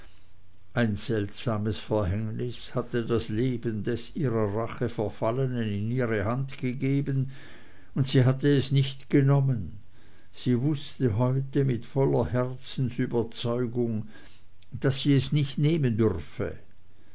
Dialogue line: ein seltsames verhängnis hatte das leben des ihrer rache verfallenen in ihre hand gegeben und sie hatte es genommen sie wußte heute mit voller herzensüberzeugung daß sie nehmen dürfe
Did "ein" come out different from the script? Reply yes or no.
no